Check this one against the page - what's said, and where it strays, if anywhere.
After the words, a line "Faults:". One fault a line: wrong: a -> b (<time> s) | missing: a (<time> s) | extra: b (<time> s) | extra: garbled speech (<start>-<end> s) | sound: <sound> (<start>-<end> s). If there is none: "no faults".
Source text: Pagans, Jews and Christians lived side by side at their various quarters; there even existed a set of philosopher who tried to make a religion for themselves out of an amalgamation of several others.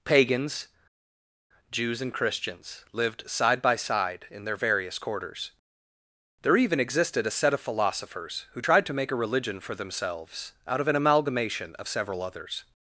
Pagans, Jews and Christians lived side by side in their various quarters; there even existed a set of philosophers who tried to make a religion for themselves out of an amalgamation of several others.
Faults:
wrong: at -> in (4.3 s)
wrong: philosopher -> philosophers (7.6 s)